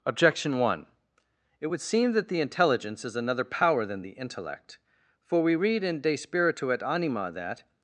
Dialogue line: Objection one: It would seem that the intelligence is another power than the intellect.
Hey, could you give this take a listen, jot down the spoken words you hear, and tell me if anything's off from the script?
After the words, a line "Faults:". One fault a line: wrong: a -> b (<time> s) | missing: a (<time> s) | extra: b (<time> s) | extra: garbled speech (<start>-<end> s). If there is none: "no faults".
Objection one: It would seem that the intelligence is another power than the intellect. For we read in De Spiritu et Anima that
Faults:
extra: For we read in De Spiritu et Anima that (5.2 s)